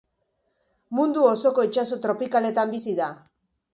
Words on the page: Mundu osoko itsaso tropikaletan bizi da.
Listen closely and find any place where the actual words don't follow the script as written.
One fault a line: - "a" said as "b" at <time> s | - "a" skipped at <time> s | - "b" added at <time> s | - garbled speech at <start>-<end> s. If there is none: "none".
none